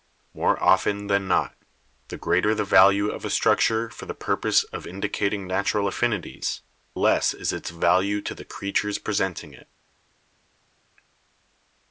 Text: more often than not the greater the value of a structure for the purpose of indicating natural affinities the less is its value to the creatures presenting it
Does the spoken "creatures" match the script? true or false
true